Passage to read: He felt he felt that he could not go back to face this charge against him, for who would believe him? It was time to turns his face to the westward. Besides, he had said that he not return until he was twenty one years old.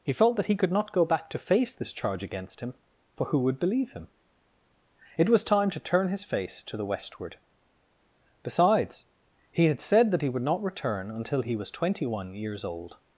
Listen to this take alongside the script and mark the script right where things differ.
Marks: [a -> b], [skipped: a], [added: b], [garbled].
He felt [skipped: he felt] that he could not go back to face this charge against him, for who would believe him? It was time to [turns -> turn] his face to the westward. Besides, he had said that he [added: would] not return until he was twenty one years old.